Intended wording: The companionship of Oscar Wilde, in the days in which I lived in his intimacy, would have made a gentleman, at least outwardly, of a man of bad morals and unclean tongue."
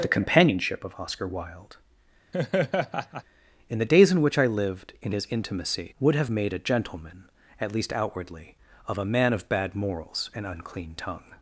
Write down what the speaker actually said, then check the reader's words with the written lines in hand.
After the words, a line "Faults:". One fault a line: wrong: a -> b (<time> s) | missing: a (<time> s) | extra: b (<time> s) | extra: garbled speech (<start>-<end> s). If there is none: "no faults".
The companionship of Oscar Wilde, in the days in which I lived in his intimacy, would have made a gentleman, at least outwardly, of a man of bad morals and unclean tongue."
Faults:
no faults